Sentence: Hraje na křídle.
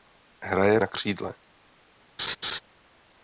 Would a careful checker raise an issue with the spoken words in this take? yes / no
no